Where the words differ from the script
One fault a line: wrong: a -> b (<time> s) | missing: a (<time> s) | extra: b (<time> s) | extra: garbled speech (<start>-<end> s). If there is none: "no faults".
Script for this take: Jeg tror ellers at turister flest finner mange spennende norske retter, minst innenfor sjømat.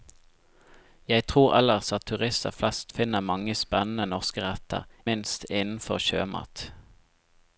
no faults